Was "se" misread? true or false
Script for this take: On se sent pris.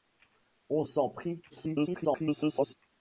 true